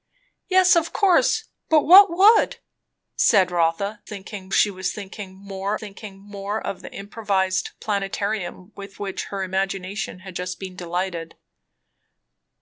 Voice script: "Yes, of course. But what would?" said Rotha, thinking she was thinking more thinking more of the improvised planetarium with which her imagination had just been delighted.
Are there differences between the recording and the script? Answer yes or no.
no